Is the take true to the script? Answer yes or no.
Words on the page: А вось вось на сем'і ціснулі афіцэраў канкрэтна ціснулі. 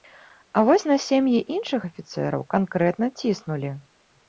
no